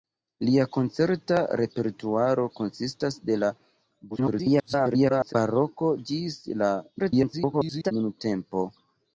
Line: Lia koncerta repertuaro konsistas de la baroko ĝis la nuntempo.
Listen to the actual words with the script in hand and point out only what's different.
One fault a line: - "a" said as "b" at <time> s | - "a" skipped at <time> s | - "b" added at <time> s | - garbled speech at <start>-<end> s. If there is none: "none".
- garbled speech at 4.1-5.3 s
- garbled speech at 7.0-7.9 s